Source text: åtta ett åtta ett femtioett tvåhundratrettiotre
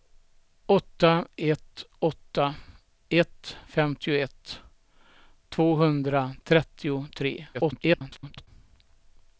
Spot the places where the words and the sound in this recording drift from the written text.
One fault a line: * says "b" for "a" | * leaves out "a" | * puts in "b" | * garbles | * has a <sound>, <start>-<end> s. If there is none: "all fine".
* garbles